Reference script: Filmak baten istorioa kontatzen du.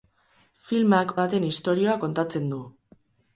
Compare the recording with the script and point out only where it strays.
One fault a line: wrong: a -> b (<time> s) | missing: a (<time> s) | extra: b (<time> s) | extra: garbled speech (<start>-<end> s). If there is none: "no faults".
no faults